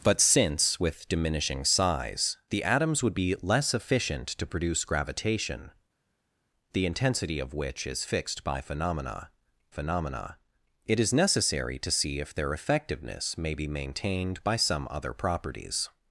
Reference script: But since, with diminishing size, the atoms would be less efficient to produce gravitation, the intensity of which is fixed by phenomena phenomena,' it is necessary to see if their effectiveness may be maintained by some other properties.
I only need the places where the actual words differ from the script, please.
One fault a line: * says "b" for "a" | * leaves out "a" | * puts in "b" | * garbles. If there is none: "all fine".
all fine